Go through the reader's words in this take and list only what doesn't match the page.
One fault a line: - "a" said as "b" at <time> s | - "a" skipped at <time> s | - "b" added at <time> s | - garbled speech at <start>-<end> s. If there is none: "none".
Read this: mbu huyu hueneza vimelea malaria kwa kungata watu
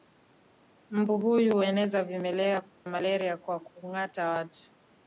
none